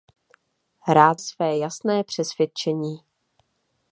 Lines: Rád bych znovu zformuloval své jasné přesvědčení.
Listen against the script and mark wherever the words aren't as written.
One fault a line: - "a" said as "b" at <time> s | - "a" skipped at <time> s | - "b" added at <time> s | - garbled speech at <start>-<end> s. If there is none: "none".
- "bych znovu zformuloval" skipped at 1.2 s